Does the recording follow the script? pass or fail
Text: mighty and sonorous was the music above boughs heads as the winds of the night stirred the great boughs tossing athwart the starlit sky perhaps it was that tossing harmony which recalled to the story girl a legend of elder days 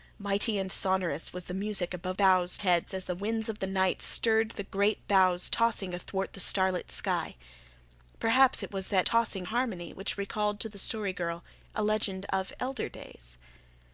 pass